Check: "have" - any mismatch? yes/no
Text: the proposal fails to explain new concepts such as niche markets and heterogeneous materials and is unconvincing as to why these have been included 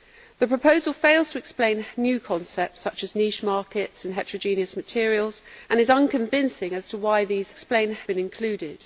yes